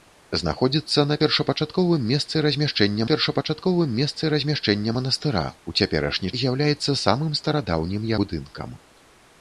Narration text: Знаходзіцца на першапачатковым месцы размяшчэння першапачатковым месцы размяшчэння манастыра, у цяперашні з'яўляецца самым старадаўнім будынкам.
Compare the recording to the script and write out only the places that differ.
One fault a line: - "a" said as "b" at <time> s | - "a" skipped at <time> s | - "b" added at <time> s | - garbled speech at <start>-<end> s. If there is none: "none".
none